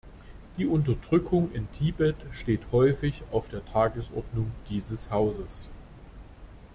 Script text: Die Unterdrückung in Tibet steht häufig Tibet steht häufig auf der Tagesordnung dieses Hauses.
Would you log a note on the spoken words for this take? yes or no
yes